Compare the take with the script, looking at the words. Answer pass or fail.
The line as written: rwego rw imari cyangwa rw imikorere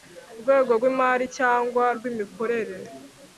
pass